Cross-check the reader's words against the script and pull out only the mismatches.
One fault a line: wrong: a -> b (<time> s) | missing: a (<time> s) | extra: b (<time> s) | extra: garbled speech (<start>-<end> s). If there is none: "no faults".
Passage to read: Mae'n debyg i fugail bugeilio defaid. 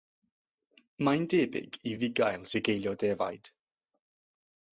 no faults